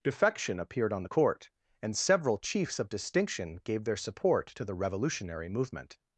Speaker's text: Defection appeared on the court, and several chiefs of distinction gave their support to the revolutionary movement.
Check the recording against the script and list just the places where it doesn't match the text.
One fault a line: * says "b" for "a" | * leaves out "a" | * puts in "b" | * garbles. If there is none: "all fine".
all fine